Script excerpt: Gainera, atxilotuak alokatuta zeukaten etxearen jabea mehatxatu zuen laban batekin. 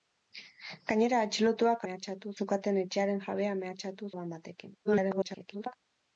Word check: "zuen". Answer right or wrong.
wrong